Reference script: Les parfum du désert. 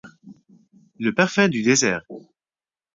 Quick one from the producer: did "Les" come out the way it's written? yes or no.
no